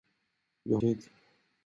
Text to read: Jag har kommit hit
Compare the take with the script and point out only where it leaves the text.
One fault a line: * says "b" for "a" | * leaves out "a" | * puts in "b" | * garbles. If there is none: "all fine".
* leaves out "har kommit"